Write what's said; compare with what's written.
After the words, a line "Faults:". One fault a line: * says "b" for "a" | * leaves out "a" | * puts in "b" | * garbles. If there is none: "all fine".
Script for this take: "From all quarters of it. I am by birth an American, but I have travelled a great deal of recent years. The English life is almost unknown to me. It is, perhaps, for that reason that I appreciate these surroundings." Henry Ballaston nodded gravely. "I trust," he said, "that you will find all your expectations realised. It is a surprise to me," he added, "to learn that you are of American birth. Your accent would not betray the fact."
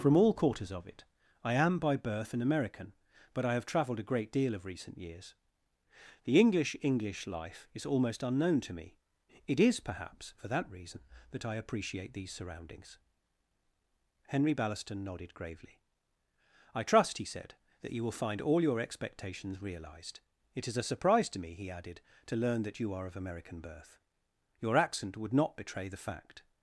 "From all quarters of it. I am by birth an American, but I have travelled a great deal of recent years. The English English life is almost unknown to me. It is, perhaps, for that reason that I appreciate these surroundings." Henry Ballaston nodded gravely. "I trust," he said, "that you will find all your expectations realised. It is a surprise to me," he added, "to learn that you are of American birth. Your accent would not betray the fact."
Faults:
* puts in "English"